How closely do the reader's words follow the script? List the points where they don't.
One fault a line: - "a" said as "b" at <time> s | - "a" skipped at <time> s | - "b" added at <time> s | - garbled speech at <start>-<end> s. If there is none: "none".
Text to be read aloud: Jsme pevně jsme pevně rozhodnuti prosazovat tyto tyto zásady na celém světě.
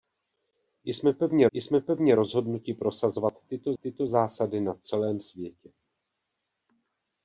none